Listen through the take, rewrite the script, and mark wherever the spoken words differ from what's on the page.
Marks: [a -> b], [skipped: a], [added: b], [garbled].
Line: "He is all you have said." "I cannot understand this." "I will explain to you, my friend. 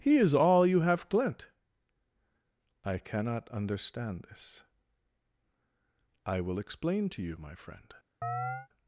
"He is all you have [said." -> glent] "I cannot understand this." "I will explain to you, my friend.